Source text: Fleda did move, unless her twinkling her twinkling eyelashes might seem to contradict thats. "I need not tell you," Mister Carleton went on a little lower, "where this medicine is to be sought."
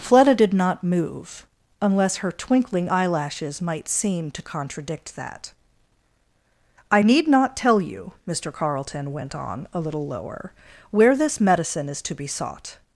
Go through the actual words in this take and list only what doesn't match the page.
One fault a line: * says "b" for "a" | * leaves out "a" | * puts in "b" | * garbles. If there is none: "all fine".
* puts in "not"
* leaves out "her twinkling"
* says "that" for "thats"